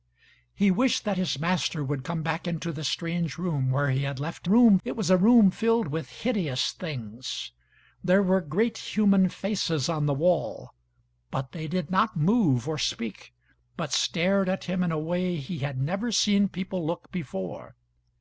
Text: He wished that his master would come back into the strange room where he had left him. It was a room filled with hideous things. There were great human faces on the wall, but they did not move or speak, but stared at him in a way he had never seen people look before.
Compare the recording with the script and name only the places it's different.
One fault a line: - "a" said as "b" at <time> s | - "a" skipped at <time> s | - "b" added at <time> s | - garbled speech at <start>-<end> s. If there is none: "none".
- "him" said as "room" at 4.4 s